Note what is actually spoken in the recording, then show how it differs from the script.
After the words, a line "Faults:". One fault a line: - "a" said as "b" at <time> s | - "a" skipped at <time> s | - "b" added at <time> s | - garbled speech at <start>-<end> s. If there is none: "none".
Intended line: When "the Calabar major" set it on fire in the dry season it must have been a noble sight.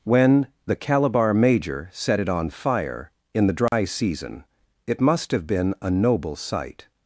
When "the Calabar major" set it on fire in the dry season it must have been a noble sight.
Faults:
none